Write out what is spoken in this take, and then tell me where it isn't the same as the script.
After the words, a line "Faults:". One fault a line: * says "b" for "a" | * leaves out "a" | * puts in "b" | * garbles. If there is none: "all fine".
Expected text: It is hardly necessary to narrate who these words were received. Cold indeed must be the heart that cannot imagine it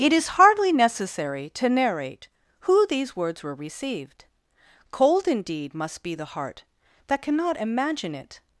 It is hardly necessary to narrate who these words were received. Cold indeed must be the heart that cannot imagine it
Faults:
all fine